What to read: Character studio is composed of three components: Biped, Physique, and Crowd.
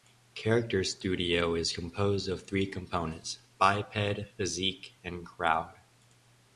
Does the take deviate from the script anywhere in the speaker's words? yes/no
no